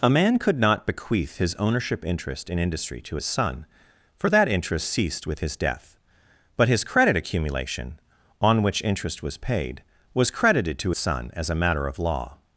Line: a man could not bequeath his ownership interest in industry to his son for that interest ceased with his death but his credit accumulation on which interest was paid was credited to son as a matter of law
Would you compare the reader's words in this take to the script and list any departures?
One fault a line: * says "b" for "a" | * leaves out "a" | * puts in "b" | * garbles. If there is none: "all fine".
all fine